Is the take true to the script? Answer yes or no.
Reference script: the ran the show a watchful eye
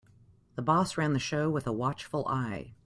no